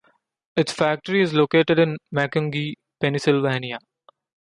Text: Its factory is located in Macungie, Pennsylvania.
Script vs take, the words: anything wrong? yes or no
no